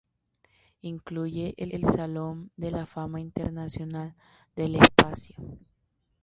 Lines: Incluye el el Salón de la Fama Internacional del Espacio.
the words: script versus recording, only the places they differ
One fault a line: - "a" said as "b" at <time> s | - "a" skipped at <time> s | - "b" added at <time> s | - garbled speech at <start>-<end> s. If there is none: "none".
none